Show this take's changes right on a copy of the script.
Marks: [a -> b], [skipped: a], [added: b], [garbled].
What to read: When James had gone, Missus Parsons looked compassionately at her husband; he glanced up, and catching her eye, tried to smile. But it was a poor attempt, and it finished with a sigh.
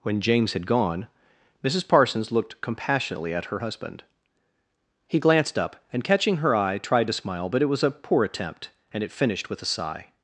When James had gone, Missus Parsons looked compassionately at her husband; he glanced up, and catching her eye, tried to smile. But it was a poor attempt, and it finished with a sigh.